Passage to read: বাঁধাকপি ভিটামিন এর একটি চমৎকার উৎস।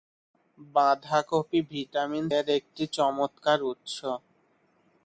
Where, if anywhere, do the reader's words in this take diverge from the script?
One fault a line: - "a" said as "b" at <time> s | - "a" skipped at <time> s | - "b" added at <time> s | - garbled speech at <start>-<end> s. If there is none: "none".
none